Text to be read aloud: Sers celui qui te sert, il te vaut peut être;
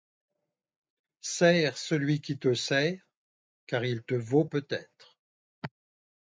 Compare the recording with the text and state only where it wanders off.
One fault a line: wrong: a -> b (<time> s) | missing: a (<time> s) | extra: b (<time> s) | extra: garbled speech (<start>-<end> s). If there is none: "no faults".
extra: car (3.7 s)